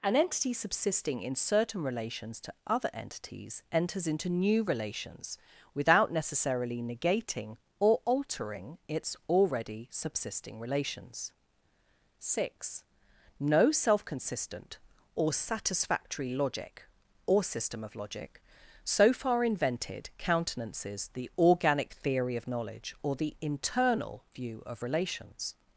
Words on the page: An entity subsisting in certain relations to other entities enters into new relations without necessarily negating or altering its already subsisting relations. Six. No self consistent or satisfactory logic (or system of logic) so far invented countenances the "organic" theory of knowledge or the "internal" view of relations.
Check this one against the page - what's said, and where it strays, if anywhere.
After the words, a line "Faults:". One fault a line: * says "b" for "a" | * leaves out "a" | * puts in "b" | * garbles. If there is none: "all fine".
An entity subsisting in certain relations to other entities enters into new relations without necessarily negating or altering its already subsisting relations. Six. No self consistent or satisfactory logic (or system of logic) so far invented countenances the "organic" theory of knowledge or the "internal" view of relations.
Faults:
all fine